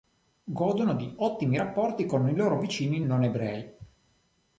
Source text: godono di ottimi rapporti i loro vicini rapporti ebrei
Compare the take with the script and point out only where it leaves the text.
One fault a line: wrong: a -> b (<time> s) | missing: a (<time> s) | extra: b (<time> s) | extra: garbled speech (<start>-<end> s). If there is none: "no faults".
extra: con (2.0 s)
wrong: rapporti -> non (3.0 s)